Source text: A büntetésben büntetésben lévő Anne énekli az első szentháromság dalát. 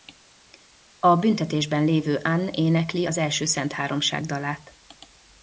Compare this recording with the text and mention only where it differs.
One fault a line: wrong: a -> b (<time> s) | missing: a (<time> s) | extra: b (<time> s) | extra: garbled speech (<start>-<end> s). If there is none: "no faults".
missing: büntetésben (1.8 s)